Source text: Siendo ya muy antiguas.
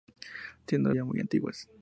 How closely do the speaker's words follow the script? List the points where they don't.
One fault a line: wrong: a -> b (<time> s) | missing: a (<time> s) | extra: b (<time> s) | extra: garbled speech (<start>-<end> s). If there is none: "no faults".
no faults